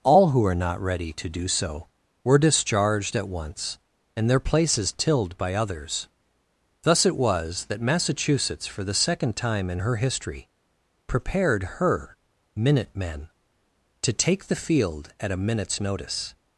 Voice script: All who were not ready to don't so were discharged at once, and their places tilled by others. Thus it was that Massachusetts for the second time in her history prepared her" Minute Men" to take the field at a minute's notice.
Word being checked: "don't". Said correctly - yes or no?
no